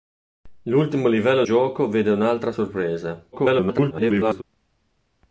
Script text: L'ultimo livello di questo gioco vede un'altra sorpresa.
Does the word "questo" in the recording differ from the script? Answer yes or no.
yes